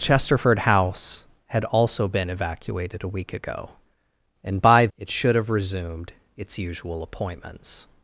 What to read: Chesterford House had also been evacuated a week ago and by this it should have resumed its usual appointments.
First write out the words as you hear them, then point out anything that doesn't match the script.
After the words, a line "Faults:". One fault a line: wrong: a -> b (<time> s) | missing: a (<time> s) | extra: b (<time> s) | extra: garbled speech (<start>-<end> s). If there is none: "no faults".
Chesterford House had also been evacuated a week ago and by it should have resumed its usual appointments.
Faults:
missing: this (4.9 s)